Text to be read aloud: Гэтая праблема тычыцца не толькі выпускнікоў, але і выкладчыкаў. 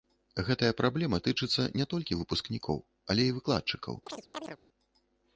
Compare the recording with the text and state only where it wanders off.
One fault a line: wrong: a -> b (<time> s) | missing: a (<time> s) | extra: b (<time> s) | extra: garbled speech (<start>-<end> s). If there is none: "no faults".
no faults